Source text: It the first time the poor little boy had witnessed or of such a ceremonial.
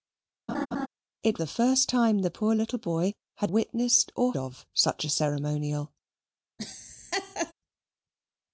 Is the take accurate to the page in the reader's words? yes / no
yes